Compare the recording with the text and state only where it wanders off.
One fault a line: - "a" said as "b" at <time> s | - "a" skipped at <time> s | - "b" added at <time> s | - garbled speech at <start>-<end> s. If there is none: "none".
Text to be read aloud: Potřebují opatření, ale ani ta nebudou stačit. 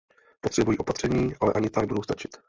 none